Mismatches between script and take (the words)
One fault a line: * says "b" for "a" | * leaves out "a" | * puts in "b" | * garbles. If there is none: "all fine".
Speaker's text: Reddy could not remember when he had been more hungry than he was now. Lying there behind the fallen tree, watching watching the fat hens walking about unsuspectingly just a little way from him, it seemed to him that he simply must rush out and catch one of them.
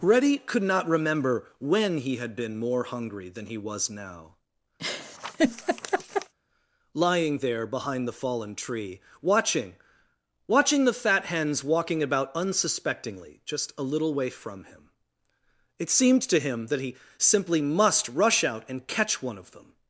all fine